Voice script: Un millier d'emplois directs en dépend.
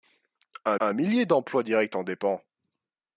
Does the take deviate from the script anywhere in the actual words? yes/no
yes